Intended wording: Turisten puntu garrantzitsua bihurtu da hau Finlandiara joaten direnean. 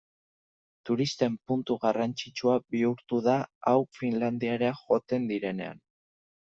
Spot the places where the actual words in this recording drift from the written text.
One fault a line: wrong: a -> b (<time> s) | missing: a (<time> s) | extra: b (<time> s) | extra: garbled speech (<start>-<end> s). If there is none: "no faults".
no faults